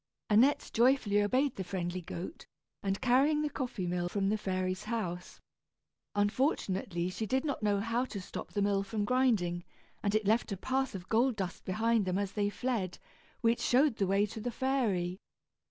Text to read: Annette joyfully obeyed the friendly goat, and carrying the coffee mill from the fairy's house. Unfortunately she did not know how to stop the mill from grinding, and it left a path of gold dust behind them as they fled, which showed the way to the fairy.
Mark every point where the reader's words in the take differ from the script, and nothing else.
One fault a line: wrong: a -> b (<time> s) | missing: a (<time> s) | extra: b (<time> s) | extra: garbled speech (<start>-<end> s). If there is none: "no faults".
no faults